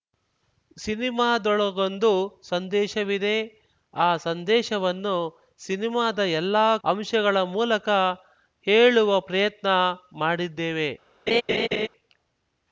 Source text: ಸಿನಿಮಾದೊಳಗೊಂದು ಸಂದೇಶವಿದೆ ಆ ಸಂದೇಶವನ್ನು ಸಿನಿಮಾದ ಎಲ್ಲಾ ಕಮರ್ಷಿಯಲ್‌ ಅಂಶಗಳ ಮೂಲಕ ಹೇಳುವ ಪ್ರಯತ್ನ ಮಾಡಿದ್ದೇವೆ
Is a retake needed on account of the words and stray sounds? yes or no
yes